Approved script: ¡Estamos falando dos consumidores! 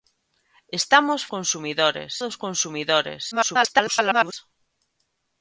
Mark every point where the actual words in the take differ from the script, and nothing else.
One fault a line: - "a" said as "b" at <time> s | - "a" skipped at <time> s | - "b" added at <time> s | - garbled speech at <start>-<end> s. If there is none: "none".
- "falando" said as "consumidores" at 1.3 s
- garbled speech at 3.3-4.3 s